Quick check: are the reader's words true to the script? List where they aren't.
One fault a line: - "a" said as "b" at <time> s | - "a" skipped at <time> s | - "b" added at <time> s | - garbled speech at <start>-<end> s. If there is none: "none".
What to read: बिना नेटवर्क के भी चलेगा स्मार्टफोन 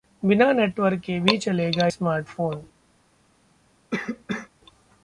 none